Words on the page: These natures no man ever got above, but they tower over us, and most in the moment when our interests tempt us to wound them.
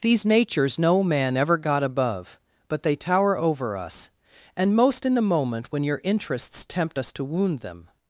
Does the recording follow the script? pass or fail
fail